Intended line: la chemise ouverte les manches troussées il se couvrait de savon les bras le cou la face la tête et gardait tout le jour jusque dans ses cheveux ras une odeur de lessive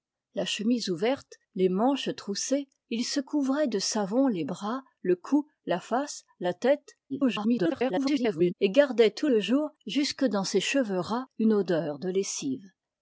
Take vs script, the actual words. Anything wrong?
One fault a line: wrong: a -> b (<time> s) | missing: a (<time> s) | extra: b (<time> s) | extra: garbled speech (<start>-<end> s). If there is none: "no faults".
extra: garbled speech (7.1-8.5 s)